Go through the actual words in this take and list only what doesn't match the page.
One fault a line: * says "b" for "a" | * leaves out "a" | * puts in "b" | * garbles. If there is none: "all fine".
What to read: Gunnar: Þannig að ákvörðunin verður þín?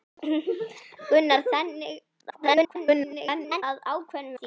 * garbles
* leaves out "verður"